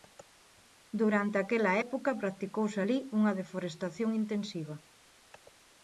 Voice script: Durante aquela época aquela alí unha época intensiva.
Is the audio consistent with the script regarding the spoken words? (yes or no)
no